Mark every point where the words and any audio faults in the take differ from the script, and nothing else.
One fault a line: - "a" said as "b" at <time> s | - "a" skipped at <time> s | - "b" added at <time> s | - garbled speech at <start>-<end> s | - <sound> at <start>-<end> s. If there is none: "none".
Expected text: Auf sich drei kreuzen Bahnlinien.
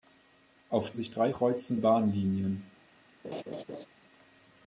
- laugh at 3.2-3.9 s